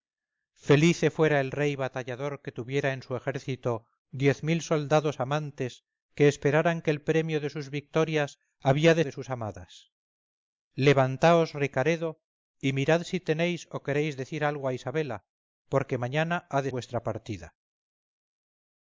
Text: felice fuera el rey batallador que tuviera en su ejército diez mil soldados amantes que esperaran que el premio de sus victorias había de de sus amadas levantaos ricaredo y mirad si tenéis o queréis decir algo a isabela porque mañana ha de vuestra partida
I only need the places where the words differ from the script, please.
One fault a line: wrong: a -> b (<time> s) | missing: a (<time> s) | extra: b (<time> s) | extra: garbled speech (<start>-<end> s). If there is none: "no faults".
no faults